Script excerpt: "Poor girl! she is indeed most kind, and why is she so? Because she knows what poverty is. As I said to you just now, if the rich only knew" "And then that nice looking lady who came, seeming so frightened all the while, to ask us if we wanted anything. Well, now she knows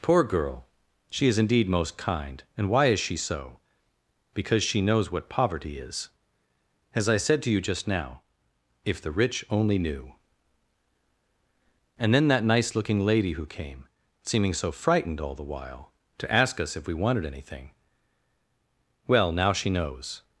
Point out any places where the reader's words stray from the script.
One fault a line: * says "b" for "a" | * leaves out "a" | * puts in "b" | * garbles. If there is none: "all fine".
all fine